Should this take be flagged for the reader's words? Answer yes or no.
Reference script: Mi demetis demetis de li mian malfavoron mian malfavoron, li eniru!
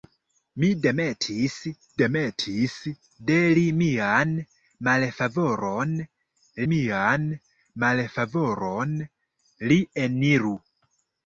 no